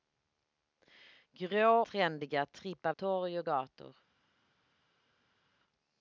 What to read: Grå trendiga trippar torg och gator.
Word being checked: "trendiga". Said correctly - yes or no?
yes